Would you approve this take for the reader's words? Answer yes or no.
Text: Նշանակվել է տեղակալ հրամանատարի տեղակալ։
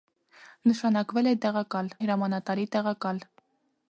yes